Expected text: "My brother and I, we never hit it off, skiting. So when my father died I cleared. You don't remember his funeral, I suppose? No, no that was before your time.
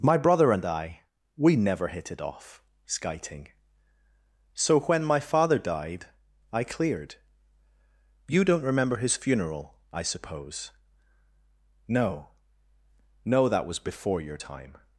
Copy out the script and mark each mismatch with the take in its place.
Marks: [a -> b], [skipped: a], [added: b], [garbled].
"My brother and I, we never hit it off, skiting. So when my father died I cleared. You don't remember his funeral, I suppose? No, no that was before your time.